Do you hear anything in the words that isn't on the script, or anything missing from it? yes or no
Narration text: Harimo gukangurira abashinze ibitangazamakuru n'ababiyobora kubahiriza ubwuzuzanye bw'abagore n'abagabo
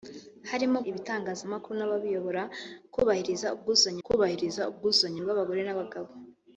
yes